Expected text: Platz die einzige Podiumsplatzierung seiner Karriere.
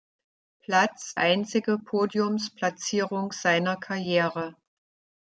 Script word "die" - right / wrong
wrong